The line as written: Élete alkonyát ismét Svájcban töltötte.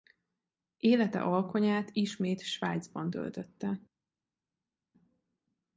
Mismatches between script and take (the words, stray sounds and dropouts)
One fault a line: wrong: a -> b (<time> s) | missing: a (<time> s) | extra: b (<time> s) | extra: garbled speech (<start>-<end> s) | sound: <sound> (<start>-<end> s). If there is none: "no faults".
no faults